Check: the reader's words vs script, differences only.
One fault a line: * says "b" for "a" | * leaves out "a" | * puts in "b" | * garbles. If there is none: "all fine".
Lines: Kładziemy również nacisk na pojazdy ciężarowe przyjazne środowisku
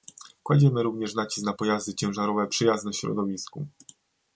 all fine